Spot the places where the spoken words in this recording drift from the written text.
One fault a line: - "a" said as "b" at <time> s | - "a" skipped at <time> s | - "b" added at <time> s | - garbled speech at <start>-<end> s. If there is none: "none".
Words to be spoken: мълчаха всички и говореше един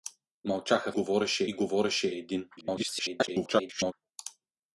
- "всички" said as "говореше" at 0.9 s
- garbled speech at 2.6-3.9 s